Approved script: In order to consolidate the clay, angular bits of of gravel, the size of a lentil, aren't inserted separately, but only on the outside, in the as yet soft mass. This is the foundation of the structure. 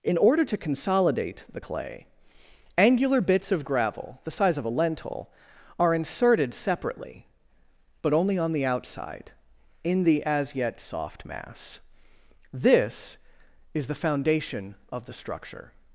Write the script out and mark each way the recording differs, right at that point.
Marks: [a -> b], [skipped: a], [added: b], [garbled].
In order to consolidate the clay, angular bits of [skipped: of] gravel, the size of a lentil, [aren't -> are] inserted separately, but only on the outside, in the as yet soft mass. This is the foundation of the structure.